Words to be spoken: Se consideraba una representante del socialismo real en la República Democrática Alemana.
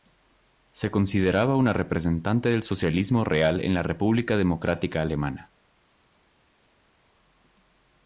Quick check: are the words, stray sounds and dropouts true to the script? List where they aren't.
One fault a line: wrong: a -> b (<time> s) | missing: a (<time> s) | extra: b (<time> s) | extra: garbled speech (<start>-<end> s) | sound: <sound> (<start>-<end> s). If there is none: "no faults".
no faults